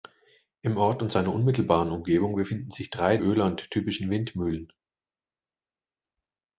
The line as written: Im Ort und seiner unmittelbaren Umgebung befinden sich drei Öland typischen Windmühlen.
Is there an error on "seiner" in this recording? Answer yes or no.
no